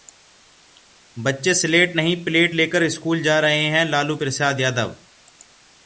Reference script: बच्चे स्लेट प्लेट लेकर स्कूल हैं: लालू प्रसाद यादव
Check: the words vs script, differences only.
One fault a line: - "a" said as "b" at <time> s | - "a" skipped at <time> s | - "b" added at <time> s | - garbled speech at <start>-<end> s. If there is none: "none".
- "नहीं" added at 1.9 s
- "जा रहे" added at 3.2 s